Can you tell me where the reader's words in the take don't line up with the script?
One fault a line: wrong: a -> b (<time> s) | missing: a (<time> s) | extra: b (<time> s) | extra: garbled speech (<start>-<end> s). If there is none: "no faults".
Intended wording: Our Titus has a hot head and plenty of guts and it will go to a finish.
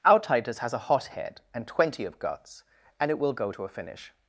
wrong: plenty -> twenty (1.7 s)